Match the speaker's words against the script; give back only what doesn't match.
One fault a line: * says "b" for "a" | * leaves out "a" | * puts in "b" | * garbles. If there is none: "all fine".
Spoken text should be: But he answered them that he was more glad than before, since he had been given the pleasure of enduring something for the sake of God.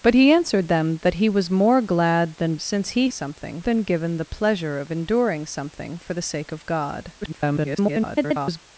* leaves out "before"
* says "something" for "had"
* garbles